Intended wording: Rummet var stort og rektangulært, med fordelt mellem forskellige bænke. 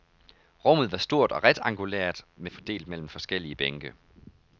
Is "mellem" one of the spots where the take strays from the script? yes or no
no